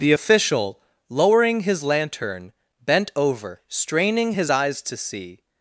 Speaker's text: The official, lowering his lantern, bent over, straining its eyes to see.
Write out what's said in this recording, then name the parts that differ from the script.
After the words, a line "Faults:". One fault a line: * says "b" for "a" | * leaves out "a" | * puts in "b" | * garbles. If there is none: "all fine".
The official, lowering his lantern, bent over, straining his eyes to see.
Faults:
* says "his" for "its"